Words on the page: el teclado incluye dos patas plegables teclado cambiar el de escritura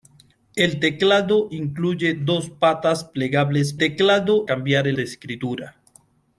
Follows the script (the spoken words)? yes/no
yes